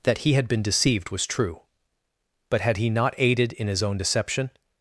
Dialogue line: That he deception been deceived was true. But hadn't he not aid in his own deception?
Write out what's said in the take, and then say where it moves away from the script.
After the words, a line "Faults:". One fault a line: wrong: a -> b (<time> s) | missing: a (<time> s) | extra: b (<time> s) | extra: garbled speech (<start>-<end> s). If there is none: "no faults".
That he had been deceived was true. But had he not aided in his own deception?
Faults:
wrong: deception -> had (0.3 s)
wrong: hadn't -> had (2.6 s)
wrong: aid -> aided (3.2 s)